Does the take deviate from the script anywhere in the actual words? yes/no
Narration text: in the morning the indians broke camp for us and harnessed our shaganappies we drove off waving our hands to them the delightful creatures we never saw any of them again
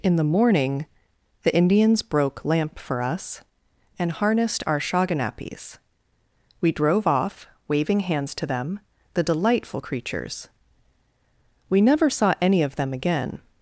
yes